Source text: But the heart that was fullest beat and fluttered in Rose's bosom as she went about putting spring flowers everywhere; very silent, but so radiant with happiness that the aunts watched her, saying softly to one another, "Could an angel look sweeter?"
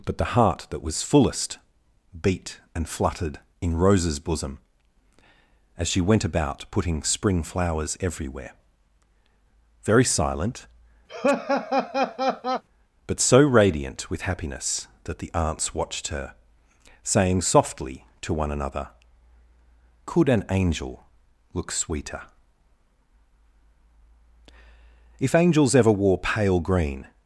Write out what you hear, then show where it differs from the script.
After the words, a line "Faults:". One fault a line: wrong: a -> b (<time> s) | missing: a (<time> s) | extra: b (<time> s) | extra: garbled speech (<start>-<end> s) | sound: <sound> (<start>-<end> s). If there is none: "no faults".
But the heart that was fullest beat and fluttered in Rose's bosom as she went about putting spring flowers everywhere; very silent, but so radiant with happiness that the aunts watched her, saying softly to one another, "Could an angel look sweeter?" If angels ever wore pale green
Faults:
sound: laugh (11.1-12.6 s)
extra: If angels ever wore pale green (25.2 s)